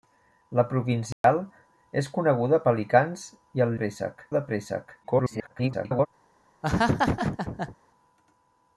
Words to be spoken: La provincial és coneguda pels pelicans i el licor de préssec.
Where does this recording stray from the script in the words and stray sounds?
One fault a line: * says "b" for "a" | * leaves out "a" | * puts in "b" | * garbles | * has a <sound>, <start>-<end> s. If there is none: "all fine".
* has a dropout, 1.1-1.2 s
* leaves out "pels"
* says "préssec" for "licor"
* garbles
* has a laugh, 6.6-7.8 s